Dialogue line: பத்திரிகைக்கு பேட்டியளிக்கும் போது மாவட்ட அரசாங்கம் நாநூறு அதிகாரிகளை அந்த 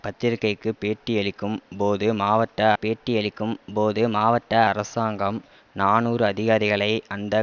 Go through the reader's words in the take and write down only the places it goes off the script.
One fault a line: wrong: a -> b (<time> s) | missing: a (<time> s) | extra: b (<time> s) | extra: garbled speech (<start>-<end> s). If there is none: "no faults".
extra: பேட்டியளிக்கும் போது மாவட்ட (2.8 s)